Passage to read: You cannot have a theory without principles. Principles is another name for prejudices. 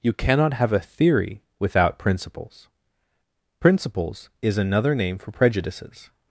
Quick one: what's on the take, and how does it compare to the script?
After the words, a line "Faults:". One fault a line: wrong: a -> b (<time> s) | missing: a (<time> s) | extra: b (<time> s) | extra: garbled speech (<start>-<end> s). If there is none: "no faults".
You cannot have a theory without principles. Principles is another name for prejudices.
Faults:
no faults